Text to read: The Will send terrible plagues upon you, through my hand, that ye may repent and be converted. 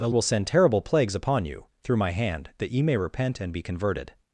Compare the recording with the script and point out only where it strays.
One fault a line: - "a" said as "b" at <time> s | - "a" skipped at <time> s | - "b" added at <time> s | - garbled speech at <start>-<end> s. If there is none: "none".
none